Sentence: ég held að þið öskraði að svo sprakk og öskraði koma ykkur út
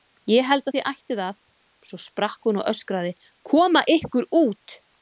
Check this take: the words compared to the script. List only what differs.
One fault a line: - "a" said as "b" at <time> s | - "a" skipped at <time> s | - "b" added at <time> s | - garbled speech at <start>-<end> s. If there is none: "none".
- "öskraði" said as "ættuð" at 0.9 s
- "hún" added at 2.5 s